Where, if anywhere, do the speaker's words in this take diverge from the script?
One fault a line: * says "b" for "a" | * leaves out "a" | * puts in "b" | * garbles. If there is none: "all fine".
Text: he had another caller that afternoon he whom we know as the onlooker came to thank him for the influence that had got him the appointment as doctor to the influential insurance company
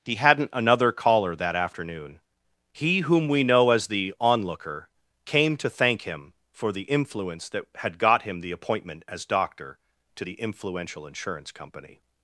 * says "hadn't" for "had"